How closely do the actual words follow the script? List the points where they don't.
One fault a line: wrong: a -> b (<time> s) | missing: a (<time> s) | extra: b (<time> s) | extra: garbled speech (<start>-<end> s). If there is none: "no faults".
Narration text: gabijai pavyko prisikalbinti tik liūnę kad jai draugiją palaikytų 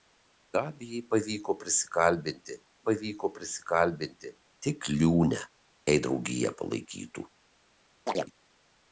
extra: pavyko prisikalbinti (2.9 s)
missing: kad (5.4 s)